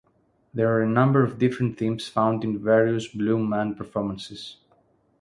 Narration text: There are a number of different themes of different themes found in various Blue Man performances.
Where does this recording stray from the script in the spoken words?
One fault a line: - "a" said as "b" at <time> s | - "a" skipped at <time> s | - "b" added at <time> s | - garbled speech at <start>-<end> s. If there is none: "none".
- "of different themes" skipped at 2.1 s